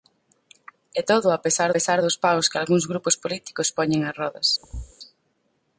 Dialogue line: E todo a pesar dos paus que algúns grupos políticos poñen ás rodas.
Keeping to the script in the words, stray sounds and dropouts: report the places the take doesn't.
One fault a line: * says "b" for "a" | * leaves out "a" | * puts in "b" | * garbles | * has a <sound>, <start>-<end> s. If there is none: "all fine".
* puts in "pesar"
* has a thud, 4.6-4.9 s